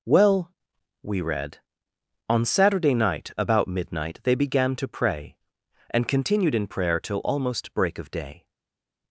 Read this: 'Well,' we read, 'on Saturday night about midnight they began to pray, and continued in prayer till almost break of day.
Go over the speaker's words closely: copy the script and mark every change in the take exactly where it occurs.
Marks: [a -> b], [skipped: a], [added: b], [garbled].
'Well,' we read, 'on Saturday night about midnight they began to pray, and continued in prayer till almost break of day.